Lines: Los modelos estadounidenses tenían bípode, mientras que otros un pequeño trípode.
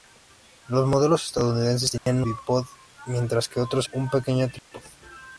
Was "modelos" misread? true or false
false